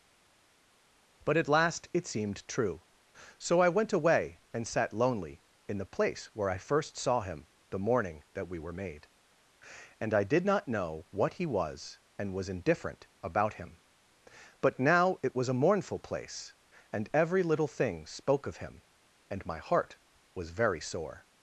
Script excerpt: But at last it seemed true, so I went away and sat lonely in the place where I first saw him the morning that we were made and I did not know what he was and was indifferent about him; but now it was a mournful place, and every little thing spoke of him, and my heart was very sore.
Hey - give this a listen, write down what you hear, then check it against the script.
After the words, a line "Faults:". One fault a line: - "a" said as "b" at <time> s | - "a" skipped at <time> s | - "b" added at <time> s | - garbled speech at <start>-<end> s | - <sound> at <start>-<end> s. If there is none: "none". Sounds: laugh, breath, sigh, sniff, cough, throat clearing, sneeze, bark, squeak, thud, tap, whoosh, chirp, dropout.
But at last it seemed true, so I went away and sat lonely in the place where I first saw him the morning that we were made and I did not know what he was and was indifferent about him; but now it was a mournful place, and every little thing spoke of him, and my heart was very sore.
Faults:
none